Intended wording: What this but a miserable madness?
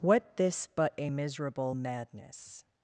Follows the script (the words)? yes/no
yes